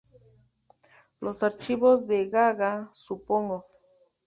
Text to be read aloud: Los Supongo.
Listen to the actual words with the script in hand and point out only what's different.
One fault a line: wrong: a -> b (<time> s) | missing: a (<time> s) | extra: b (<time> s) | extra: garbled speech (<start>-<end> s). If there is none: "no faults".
extra: Archivos de Gaga (1.4 s)